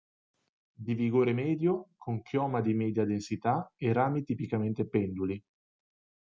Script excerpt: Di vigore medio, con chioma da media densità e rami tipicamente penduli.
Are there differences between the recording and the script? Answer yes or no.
yes